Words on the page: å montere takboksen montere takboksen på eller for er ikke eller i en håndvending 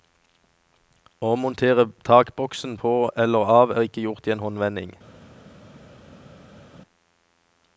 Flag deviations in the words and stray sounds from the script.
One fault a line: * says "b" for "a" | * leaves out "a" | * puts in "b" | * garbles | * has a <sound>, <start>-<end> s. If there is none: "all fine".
* leaves out "montere takboksen"
* says "av" for "for"
* says "gjort" for "eller"